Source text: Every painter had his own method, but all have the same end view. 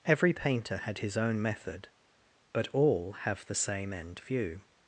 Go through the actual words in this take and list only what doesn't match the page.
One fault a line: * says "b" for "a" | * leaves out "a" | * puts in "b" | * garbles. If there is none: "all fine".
all fine